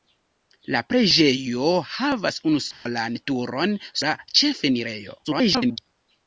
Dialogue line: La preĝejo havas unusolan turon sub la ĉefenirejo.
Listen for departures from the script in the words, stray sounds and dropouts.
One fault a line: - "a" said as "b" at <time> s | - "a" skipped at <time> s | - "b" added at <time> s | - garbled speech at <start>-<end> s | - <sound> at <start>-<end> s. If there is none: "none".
- dropout at 2.7-2.9 s
- "sub" skipped at 3.8 s
- garbled speech at 5.2-5.8 s